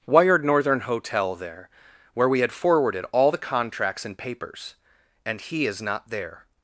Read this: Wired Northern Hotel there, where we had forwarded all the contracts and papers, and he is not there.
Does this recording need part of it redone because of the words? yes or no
no